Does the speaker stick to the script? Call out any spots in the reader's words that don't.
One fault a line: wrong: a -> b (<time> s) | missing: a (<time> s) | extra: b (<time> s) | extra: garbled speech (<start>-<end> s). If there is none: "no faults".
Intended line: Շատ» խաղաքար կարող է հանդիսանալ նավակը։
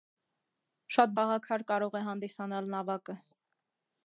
no faults